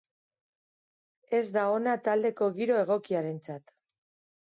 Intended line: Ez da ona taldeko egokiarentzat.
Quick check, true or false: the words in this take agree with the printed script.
false